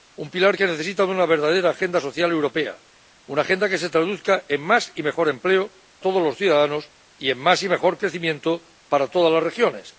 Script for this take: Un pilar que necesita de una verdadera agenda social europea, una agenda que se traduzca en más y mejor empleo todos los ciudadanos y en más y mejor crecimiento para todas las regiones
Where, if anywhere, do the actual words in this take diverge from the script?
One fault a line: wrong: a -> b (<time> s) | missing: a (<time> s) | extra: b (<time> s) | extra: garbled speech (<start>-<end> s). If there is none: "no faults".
no faults